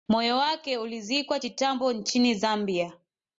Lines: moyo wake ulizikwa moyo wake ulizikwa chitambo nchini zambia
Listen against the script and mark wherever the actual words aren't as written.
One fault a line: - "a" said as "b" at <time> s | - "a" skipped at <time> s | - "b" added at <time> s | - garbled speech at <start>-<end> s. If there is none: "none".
- "moyo wake ulizikwa" skipped at 1.4 s